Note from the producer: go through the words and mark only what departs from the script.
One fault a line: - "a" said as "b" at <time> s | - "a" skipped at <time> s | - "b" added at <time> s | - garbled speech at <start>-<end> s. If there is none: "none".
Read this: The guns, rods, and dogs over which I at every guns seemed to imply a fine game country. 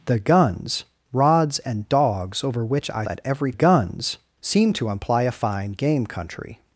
none